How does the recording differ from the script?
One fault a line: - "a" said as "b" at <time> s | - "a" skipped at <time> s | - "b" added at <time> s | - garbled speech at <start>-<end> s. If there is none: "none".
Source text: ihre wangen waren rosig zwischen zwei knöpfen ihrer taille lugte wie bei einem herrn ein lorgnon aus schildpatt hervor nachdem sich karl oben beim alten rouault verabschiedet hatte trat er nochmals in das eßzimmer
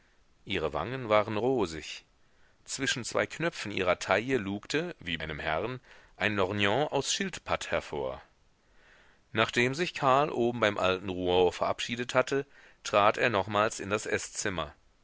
- "bei" skipped at 5.2 s